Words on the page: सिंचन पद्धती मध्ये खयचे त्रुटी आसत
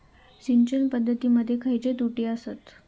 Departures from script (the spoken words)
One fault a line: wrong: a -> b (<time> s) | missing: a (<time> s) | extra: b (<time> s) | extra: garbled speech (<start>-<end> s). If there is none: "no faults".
no faults